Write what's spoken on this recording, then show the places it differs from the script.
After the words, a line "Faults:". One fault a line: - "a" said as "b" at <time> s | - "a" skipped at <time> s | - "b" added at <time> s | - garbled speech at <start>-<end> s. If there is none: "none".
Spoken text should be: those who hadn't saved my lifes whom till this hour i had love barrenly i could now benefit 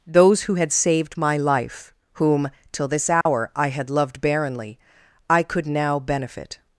those who had saved my life whom till this hour i had loved barrenly i could now benefit
Faults:
- "hadn't" said as "had" at 0.6 s
- "lifes" said as "life" at 1.4 s
- "love" said as "loved" at 3.9 s